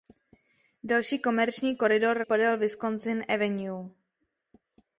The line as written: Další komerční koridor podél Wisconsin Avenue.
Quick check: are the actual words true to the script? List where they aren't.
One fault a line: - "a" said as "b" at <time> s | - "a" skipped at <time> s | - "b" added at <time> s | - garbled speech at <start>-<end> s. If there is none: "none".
none